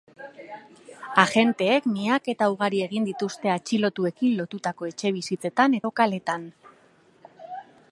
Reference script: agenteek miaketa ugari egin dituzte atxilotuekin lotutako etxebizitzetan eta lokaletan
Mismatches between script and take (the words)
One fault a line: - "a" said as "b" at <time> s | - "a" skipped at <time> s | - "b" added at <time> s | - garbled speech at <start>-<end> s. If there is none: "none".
- "eta" skipped at 5.8 s